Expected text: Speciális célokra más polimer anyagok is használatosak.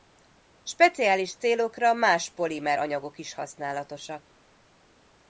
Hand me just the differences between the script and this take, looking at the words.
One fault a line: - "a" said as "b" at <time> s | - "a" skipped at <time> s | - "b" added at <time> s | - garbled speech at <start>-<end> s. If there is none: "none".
none